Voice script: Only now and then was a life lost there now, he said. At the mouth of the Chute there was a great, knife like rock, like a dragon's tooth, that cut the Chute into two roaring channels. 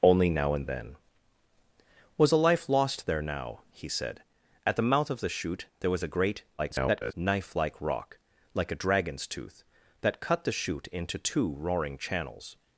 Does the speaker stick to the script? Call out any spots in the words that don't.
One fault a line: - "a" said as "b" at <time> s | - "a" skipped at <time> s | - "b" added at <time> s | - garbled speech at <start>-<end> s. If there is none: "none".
- garbled speech at 6.6-7.1 s